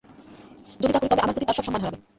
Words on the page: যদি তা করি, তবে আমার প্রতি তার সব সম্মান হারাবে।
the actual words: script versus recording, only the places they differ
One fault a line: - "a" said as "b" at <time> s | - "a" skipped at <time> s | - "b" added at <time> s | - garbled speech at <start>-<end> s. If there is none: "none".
none